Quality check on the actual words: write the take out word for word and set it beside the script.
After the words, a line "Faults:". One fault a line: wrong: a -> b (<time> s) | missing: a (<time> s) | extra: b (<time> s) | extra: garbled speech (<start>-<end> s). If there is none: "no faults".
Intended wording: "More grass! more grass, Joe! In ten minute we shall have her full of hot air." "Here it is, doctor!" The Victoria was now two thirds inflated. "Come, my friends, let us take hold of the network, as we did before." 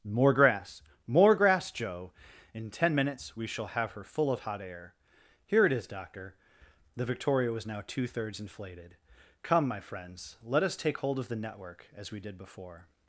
"More grass! more grass, Joe! In ten minutes we shall have her full of hot air." "Here it is, doctor!" The Victoria was now two thirds inflated. "Come, my friends, let us take hold of the network, as we did before."
Faults:
wrong: minute -> minutes (2.9 s)